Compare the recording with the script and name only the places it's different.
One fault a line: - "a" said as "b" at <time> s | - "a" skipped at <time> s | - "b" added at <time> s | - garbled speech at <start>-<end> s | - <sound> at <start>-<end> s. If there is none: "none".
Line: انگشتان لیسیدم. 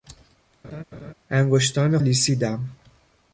- laugh at 0.6-1.1 s